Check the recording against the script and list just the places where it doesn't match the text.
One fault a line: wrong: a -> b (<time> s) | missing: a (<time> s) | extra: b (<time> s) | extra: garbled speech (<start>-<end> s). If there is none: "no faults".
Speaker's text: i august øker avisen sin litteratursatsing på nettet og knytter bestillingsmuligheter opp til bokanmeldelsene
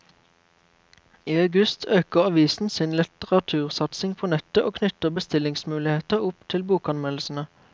no faults